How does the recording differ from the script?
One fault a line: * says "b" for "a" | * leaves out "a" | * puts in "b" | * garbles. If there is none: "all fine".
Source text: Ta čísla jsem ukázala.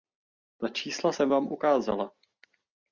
* puts in "vám"